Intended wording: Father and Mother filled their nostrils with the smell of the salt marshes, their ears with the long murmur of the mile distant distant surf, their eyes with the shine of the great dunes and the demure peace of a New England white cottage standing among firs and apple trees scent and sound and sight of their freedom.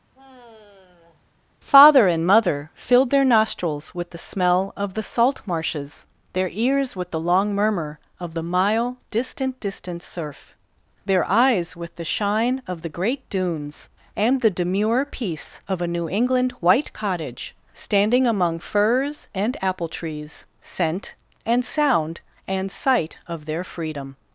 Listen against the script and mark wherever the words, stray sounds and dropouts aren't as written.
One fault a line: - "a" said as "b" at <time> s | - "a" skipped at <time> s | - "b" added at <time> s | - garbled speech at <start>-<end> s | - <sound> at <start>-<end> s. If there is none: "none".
- sigh at 0.1-1.3 s